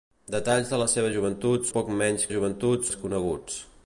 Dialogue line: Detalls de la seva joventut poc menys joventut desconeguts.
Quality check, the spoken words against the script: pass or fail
pass